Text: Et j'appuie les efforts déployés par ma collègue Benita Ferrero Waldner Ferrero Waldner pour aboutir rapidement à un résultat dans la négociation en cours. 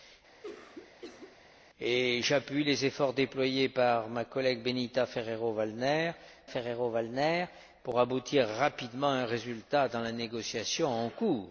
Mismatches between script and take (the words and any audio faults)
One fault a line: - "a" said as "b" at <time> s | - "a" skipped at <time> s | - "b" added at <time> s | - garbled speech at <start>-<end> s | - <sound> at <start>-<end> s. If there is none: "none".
- cough at 0.4-1.4 s